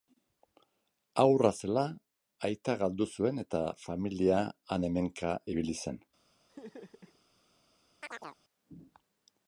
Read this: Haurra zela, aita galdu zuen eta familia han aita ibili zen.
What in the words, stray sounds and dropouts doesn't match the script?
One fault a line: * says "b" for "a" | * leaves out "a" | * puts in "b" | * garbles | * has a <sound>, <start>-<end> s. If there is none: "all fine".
* says "hemenka" for "aita"
* has a laugh, 6.5-7.2 s
* has a chirp, 8.0-8.4 s